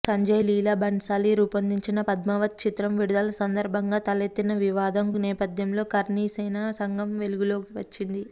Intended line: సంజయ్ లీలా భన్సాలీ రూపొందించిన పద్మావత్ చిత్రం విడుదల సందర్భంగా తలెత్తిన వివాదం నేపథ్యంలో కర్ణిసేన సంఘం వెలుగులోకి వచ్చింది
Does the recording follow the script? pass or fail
pass